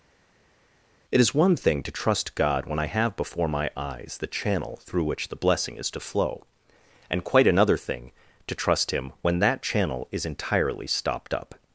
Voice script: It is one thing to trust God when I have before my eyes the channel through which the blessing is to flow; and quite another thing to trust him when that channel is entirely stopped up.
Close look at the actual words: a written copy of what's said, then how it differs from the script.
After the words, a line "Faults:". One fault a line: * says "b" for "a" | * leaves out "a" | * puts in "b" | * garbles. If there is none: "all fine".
It is one thing to trust God when I have before my eyes the channel through which the blessing is to flow; and quite another thing to trust him when that channel is entirely stopped up.
Faults:
all fine